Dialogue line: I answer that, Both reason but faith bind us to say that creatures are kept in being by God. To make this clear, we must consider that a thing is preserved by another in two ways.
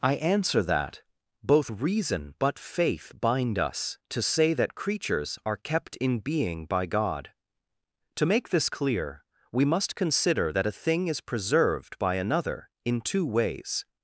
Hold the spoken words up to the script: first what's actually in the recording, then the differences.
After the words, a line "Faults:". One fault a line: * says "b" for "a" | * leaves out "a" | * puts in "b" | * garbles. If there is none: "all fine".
I answer that, Both reason but faith bind us to say that creatures are kept in being by God. To make this clear, we must consider that a thing is preserved by another in two ways.
Faults:
all fine